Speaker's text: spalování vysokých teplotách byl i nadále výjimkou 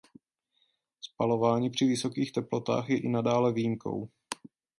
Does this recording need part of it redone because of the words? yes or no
yes